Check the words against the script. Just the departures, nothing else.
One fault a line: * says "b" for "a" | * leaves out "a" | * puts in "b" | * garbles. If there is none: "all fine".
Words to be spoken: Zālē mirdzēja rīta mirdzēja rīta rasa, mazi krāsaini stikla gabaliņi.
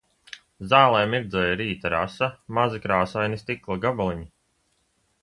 * leaves out "mirdzēja rīta"